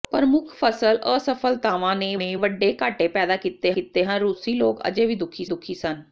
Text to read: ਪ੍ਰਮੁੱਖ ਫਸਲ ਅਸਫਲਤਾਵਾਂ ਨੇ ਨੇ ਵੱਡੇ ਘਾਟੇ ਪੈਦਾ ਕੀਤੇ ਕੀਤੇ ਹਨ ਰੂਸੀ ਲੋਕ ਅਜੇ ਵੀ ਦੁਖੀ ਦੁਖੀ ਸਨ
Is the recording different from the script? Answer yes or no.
no